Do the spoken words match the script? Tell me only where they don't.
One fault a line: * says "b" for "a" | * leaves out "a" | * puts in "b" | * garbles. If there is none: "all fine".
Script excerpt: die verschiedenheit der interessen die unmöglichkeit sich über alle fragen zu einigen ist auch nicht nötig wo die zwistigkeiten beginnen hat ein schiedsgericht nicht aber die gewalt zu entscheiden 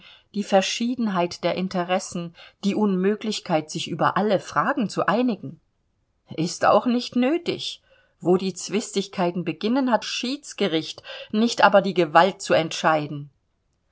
* leaves out "ein"